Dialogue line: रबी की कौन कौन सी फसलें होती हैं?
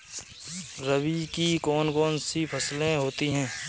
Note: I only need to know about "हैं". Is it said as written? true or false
true